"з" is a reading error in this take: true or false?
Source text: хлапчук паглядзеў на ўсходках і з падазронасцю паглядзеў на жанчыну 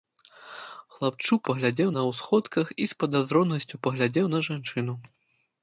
false